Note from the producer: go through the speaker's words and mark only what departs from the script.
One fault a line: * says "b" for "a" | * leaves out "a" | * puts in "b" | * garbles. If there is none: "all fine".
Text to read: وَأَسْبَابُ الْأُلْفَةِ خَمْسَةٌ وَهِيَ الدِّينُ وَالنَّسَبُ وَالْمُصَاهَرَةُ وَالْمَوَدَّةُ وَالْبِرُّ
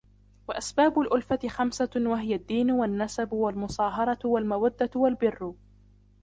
all fine